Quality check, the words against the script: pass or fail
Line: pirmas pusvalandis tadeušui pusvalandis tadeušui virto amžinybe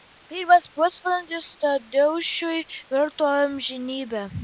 fail